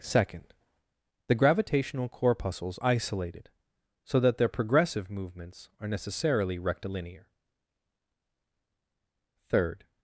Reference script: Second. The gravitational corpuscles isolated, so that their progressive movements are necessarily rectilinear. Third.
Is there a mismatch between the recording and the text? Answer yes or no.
no